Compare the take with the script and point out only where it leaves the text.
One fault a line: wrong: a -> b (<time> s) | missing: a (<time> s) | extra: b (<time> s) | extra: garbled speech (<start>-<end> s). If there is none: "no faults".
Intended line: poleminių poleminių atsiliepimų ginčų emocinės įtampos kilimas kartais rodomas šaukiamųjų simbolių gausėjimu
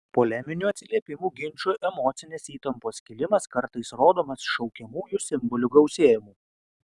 missing: poleminių (0.7 s)